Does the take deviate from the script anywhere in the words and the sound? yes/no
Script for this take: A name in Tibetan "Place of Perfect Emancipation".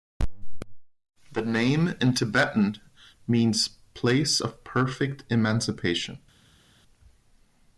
yes